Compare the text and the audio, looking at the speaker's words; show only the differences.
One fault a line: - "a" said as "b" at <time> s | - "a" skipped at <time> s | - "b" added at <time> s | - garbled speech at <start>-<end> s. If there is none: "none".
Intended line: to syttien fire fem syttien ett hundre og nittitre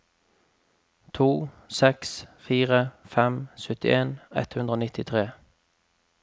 - "syttien" said as "seks" at 1.8 s